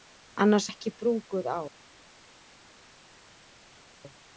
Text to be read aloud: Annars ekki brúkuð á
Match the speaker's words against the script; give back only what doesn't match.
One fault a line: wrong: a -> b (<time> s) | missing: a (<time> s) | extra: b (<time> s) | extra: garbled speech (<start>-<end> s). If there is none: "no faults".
no faults